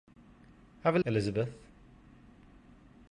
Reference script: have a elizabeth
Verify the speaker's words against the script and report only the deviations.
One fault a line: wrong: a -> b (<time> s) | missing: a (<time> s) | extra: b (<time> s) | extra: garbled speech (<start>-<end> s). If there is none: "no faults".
no faults